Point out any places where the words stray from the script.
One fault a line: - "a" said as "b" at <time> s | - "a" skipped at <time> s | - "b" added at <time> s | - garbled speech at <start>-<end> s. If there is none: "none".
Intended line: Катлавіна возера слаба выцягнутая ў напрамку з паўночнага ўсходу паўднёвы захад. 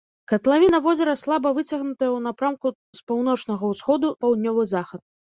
none